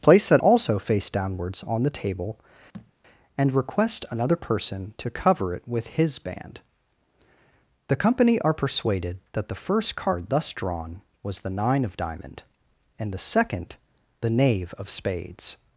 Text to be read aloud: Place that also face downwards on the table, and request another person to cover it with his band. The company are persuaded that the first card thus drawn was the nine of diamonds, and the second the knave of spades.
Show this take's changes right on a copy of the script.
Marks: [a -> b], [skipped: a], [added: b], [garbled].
Place that also face downwards on the table, and request another person to cover it with his band. The company are persuaded that the first card thus drawn was the nine of [diamonds, -> diamond] and the second the knave of spades.